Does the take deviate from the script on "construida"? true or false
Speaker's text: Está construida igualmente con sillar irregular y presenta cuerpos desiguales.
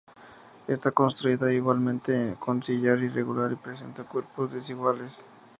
false